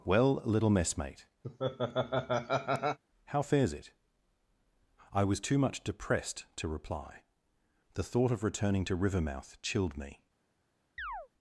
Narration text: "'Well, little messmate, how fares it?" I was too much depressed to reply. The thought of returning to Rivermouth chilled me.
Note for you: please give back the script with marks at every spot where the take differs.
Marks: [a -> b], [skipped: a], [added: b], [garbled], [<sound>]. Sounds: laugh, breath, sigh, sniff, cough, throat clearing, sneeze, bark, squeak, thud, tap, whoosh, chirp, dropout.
"'Well, little messmate, [laugh] how fares it?" I was too much depressed to reply. The thought of returning to Rivermouth chilled me. [chirp]